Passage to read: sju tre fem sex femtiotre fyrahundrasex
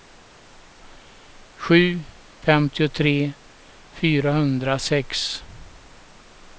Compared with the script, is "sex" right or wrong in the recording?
wrong